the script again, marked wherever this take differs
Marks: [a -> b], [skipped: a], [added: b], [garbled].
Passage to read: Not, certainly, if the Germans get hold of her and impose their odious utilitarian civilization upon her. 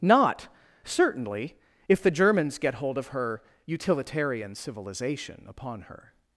Not, certainly, if the Germans get hold of her [skipped: and impose their odious] utilitarian civilization upon her.